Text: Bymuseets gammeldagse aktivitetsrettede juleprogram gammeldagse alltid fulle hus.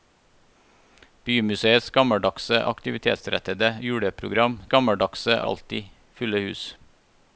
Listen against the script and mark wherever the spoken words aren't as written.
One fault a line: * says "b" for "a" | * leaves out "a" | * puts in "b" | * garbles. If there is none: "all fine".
all fine